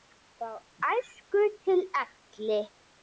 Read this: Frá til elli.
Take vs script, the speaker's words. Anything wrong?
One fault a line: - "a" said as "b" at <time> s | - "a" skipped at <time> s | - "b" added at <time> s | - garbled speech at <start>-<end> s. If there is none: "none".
- "æsku" added at 0.9 s